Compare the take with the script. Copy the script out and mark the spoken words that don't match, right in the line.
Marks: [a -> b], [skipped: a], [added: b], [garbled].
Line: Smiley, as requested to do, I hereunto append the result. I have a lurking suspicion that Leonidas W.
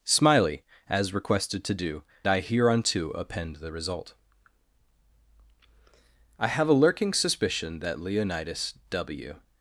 Smiley, as requested to do, I hereunto append the result. I have a lurking suspicion that Leonidas W.